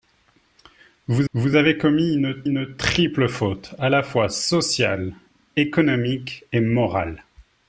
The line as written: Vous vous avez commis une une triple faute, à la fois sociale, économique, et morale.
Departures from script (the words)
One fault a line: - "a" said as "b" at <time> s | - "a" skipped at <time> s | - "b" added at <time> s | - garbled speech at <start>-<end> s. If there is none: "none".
none